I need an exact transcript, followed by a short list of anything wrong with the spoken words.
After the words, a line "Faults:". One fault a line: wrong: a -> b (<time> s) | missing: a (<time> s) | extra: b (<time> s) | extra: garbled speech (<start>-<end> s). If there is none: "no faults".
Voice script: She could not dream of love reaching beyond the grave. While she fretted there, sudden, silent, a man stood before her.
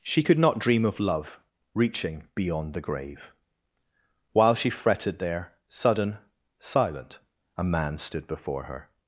She could not dream of love reaching beyond the grave. While she fretted there, sudden, silent, a man stood before her.
Faults:
no faults